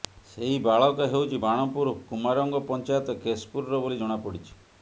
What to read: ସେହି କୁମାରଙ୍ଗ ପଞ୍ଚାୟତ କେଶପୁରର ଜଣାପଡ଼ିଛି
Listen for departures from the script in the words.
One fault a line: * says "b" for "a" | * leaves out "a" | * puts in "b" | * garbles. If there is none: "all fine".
* puts in "ବାଳକ ହେଉଛି ବାଣପୁର"
* puts in "ବୋଲି"